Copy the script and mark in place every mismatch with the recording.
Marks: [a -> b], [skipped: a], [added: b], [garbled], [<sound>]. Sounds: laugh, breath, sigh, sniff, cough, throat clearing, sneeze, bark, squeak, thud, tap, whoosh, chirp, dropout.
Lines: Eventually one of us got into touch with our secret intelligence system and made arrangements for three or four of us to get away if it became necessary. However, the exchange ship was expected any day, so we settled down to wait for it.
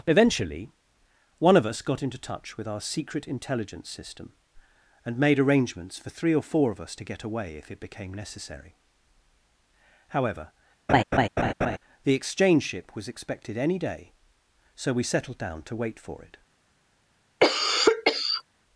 Eventually one of us got into touch with our secret intelligence system and made arrangements for three or four of us to get away if it became necessary. However, [laugh] the exchange ship was expected any day, so we settled down to wait for it. [cough]